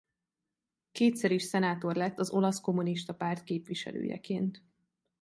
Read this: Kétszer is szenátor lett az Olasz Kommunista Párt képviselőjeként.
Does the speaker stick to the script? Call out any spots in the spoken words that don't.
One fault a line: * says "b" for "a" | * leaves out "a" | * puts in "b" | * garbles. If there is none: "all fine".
all fine